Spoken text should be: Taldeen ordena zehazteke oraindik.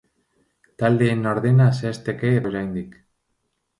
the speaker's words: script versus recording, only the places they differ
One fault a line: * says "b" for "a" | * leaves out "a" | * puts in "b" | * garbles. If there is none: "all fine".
all fine